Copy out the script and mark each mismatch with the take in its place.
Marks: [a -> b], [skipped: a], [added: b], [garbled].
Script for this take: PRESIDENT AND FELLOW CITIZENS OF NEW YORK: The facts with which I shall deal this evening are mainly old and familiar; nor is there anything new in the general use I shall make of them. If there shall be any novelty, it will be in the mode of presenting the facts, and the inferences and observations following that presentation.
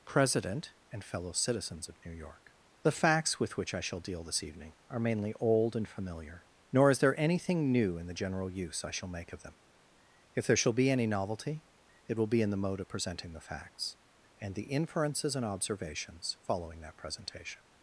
PRESIDENT AND FELLOW CITIZENS OF NEW YORK: The facts with which I shall deal this evening are mainly old and familiar; nor is there anything new in the general use I shall make of them. If there shall be any novelty, it will be in the mode of presenting the facts, and the inferences and observations following that presentation.